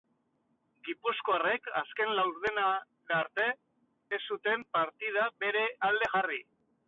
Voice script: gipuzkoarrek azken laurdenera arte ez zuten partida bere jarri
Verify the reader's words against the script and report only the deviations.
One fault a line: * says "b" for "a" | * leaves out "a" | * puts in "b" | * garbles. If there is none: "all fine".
* puts in "alde"